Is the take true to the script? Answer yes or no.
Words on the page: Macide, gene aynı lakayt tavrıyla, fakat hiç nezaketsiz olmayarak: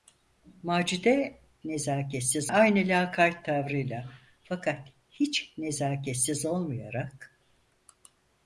no